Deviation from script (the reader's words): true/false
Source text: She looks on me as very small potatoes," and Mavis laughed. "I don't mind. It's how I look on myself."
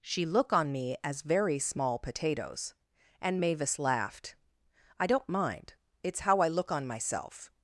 true